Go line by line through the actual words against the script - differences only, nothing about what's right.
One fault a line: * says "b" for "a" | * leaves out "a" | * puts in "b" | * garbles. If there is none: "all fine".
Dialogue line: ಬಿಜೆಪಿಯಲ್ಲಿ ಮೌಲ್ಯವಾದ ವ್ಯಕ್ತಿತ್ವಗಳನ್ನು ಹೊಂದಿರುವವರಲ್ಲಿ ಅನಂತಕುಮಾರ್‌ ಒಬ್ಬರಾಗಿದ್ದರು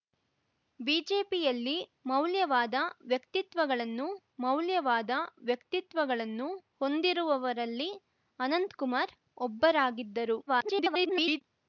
* puts in "ಮೌಲ್ಯವಾದ ವ್ಯಕ್ತಿತ್ವಗಳನ್ನು"
* garbles